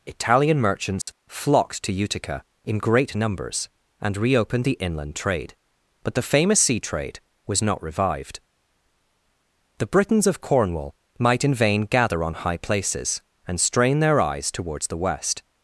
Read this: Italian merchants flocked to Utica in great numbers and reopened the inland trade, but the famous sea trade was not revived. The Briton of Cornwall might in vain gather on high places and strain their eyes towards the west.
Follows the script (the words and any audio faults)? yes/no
no